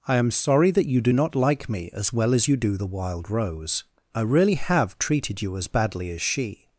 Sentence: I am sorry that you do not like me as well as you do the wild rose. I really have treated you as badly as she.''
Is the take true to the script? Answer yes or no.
yes